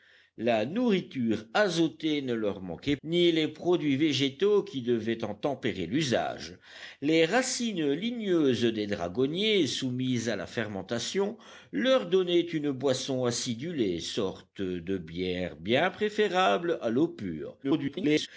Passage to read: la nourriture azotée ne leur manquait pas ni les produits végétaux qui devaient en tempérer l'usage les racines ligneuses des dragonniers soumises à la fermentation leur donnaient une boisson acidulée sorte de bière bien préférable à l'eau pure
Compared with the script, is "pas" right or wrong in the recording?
wrong